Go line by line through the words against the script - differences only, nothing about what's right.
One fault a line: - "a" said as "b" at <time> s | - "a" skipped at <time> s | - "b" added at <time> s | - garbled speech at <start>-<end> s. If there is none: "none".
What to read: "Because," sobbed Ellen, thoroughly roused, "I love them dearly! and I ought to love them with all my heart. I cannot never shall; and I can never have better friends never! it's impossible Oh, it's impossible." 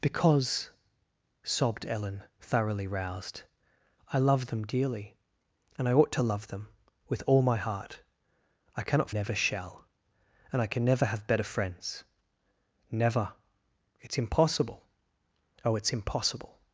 none